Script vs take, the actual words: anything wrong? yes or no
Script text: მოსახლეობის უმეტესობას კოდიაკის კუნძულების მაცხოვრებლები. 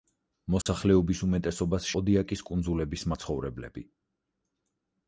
no